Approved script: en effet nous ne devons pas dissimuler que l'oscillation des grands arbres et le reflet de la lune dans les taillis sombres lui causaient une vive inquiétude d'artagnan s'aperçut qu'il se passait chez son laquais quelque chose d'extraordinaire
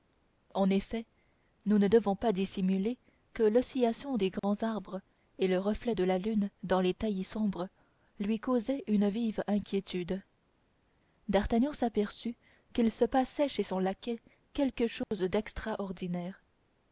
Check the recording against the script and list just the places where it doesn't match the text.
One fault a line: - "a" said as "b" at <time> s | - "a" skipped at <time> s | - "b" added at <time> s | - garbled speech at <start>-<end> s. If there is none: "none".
none